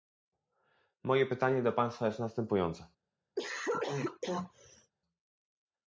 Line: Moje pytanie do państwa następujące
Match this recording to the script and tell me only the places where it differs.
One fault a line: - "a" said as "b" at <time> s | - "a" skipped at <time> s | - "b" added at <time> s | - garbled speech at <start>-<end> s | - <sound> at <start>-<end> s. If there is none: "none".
- "jest" added at 2.0 s
- cough at 3.4-4.9 s